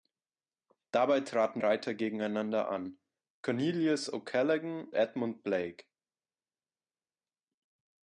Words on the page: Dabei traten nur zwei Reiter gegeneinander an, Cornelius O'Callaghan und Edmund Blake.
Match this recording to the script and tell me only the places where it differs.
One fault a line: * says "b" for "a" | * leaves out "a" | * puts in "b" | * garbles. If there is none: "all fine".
* leaves out "nur zwei"
* leaves out "und"